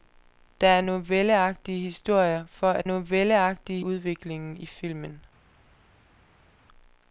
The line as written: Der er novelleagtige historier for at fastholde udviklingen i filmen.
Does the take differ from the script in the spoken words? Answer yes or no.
yes